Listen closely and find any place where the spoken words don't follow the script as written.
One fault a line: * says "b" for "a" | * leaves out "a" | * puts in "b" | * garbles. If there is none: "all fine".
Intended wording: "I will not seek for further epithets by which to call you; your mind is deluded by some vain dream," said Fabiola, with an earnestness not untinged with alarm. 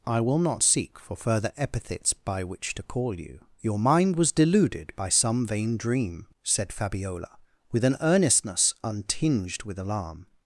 * says "was" for "is"
* leaves out "not"